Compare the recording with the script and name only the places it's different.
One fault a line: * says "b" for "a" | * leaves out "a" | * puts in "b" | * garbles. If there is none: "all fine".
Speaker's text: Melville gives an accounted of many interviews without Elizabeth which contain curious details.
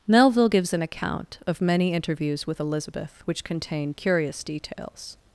* says "account" for "accounted"
* says "with" for "without"